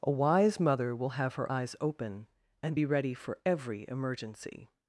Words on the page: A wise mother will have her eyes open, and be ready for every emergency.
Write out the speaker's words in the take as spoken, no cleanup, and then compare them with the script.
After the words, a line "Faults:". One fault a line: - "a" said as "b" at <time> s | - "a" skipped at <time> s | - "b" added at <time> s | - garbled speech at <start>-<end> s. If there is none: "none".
A wise mother will have her eyes open, and be ready for every emergency.
Faults:
none